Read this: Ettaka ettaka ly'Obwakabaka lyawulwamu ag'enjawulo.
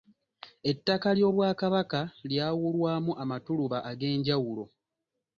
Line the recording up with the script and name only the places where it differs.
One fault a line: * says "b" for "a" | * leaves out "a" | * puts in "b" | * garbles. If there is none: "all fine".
* leaves out "ettaka"
* puts in "amatuluba"